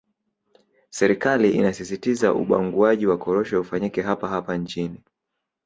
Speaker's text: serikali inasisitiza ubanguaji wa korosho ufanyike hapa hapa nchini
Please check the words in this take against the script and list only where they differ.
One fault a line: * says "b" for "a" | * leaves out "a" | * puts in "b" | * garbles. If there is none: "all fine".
all fine